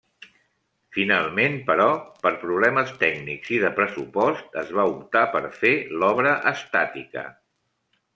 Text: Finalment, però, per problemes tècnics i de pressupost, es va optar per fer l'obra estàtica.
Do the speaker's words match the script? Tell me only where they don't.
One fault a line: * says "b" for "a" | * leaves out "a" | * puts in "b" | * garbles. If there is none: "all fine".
all fine